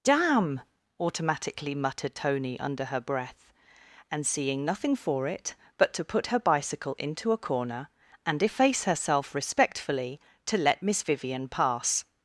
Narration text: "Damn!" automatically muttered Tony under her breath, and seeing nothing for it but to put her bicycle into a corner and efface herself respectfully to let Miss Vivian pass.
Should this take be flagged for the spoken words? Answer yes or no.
no